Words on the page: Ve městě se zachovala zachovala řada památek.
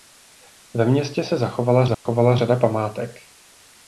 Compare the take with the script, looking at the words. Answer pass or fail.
pass